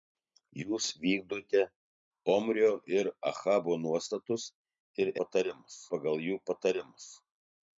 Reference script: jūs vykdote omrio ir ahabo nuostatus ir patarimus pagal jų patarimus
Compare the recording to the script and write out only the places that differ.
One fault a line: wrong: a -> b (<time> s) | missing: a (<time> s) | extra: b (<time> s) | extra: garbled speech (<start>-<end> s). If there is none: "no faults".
no faults